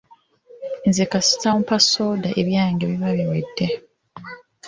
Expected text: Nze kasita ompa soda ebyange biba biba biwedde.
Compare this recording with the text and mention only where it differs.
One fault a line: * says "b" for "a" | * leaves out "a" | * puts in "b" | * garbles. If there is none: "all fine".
* leaves out "biba"